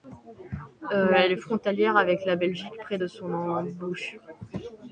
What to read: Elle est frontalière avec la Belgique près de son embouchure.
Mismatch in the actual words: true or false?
false